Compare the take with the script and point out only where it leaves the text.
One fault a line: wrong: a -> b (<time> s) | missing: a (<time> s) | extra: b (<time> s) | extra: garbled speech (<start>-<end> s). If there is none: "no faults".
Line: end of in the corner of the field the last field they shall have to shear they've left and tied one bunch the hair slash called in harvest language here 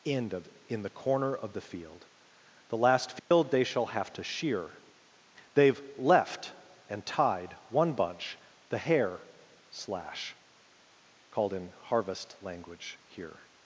no faults